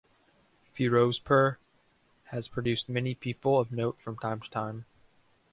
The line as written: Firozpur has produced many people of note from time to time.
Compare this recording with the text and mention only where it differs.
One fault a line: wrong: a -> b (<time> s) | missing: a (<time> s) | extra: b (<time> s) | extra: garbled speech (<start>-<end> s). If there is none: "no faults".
no faults